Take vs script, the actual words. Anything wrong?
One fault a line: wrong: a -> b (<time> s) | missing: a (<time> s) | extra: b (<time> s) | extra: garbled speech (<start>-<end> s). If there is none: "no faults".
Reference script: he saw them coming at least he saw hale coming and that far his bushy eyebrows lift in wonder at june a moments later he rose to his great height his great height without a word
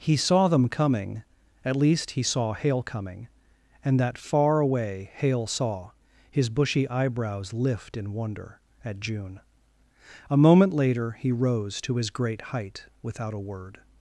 extra: away hale saw (4.6 s)
wrong: moments -> moment (10.4 s)
missing: his great height (12.8 s)